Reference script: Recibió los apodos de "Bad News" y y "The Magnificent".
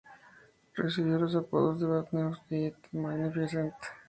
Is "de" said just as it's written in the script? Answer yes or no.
yes